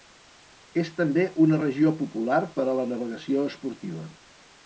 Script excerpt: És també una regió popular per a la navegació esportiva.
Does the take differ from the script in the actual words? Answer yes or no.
no